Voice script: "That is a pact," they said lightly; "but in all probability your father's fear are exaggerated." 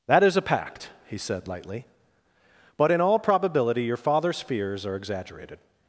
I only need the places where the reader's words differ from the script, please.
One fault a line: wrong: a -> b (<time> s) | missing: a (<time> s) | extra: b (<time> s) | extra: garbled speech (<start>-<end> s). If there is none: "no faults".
wrong: they -> he (1.1 s)
wrong: fear -> fears (4.4 s)